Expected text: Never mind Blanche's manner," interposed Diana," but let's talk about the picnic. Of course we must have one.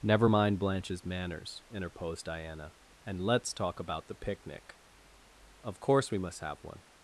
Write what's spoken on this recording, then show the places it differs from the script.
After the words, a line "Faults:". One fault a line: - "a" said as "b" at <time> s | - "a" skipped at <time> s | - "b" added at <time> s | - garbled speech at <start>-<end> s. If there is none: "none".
Never mind Blanche's manners," interposed Diana," and let's talk about the picnic. Of course we must have one.
Faults:
- "manner" said as "manners" at 1.0 s
- "but" said as "and" at 3.0 s